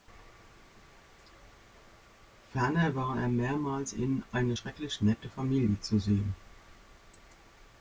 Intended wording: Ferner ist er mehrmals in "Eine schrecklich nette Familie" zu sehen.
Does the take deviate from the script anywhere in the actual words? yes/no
yes